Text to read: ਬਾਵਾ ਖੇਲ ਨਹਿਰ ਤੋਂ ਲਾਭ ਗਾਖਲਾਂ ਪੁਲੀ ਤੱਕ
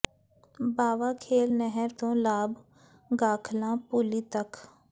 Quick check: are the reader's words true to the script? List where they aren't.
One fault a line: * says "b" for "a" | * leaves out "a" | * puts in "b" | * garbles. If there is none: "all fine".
all fine